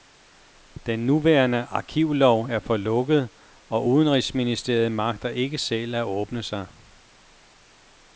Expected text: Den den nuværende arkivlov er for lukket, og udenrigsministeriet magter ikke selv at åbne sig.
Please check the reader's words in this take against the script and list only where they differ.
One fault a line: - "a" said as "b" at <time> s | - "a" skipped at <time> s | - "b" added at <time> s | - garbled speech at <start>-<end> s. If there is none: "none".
- "den" skipped at 1.0 s